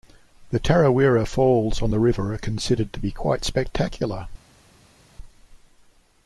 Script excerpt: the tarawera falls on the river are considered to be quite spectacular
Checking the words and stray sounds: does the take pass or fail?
pass